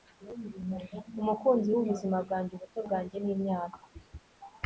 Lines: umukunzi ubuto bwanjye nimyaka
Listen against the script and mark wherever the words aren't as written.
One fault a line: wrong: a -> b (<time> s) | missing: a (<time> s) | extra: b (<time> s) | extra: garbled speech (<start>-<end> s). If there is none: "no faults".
extra: wubuzima bwanjye (1.7 s)